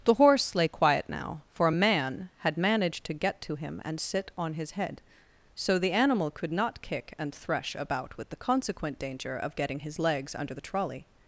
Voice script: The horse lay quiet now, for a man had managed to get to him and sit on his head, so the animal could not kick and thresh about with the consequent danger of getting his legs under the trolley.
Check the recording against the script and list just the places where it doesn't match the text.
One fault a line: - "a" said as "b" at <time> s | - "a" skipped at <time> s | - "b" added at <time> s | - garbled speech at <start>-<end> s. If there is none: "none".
none